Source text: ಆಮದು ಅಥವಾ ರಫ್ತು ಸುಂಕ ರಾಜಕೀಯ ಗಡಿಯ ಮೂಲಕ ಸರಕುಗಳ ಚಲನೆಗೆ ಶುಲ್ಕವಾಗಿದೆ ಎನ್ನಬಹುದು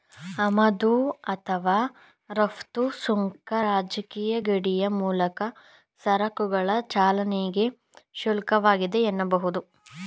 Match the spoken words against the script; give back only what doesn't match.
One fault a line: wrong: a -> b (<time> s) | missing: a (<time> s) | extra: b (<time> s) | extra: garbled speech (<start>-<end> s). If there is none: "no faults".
no faults